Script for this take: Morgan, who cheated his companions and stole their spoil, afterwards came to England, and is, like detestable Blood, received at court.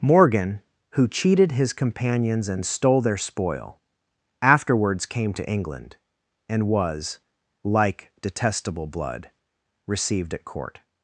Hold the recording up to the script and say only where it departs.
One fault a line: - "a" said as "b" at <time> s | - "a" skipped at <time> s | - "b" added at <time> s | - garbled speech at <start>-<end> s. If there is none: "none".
- "is" said as "was" at 6.7 s